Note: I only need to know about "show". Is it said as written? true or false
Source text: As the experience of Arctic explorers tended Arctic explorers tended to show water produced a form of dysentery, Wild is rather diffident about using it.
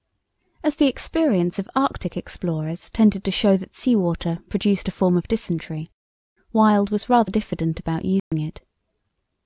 false